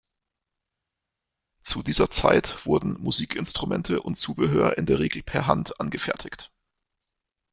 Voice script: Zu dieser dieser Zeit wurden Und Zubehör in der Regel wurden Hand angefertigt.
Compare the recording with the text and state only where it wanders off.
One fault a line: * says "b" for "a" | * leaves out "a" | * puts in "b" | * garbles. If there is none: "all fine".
* leaves out "dieser"
* puts in "Musikinstrumente"
* says "per" for "wurden"